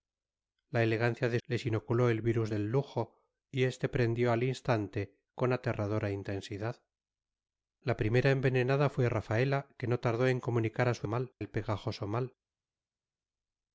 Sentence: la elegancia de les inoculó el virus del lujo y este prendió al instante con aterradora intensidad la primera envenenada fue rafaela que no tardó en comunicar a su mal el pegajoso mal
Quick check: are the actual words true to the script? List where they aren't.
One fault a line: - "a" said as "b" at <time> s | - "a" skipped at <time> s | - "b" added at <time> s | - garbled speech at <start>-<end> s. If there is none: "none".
none